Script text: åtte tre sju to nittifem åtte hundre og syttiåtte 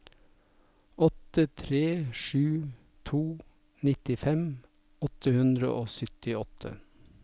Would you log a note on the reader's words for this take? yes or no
no